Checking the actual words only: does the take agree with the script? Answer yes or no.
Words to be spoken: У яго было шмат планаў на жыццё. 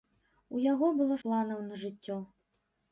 no